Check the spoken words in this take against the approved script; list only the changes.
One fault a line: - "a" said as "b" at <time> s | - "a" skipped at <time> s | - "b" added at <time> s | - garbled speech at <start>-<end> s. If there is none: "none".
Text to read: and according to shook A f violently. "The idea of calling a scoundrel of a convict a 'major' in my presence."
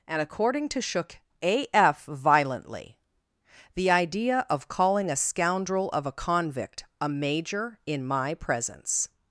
none